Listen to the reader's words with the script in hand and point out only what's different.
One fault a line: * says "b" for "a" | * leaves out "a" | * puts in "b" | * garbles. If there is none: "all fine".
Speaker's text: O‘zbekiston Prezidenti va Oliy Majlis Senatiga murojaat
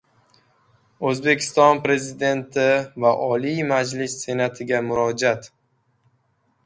all fine